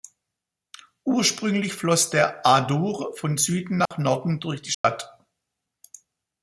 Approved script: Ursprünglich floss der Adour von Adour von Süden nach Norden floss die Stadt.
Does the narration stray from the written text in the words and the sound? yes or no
yes